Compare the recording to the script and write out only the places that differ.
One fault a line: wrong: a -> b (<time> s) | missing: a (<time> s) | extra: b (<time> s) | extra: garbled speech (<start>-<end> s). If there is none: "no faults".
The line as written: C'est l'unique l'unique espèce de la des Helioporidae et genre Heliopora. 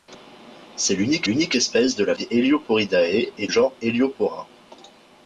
no faults